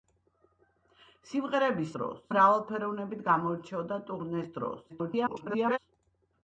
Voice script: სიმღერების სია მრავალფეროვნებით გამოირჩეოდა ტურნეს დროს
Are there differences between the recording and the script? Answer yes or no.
yes